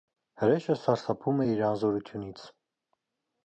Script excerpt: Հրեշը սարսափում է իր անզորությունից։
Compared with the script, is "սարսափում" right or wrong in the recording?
right